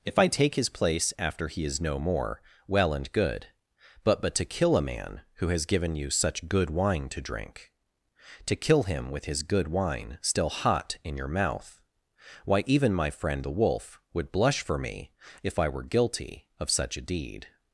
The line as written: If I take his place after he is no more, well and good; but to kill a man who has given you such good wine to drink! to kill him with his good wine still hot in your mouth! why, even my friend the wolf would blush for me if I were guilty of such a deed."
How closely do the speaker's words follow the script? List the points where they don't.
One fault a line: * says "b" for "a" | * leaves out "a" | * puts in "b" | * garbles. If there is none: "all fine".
* puts in "but"